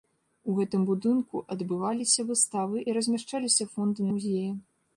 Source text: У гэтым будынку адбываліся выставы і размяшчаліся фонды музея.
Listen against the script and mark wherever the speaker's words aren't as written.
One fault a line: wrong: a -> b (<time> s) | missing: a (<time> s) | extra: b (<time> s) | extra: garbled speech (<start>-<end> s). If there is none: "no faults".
no faults